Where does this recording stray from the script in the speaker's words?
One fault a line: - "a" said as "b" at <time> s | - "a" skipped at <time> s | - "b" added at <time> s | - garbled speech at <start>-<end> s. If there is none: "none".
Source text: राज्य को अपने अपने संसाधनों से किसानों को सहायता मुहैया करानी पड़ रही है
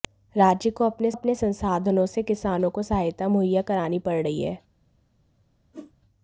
none